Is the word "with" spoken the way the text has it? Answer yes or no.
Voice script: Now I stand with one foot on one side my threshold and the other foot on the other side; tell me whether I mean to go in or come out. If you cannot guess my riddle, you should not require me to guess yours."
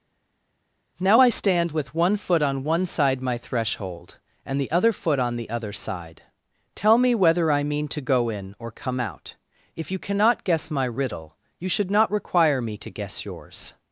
yes